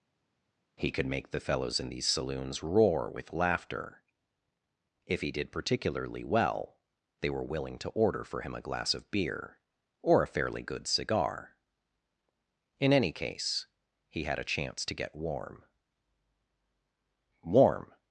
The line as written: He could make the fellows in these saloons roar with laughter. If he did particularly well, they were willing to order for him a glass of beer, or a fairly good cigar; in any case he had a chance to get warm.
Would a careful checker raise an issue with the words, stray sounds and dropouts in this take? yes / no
yes